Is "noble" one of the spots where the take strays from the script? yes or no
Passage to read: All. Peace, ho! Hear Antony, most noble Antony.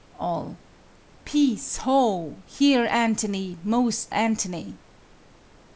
yes